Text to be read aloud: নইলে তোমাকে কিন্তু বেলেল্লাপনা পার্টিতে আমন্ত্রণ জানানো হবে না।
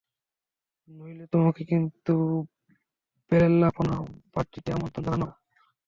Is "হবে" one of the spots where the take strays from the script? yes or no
yes